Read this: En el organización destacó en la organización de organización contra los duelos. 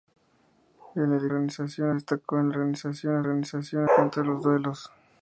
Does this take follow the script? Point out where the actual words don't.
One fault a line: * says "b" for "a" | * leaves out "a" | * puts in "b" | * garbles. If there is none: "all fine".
all fine